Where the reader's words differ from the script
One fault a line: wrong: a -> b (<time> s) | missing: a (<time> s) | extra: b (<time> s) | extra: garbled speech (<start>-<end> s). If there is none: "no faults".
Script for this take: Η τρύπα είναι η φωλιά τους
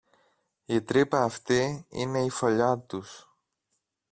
extra: αυτή (1.2 s)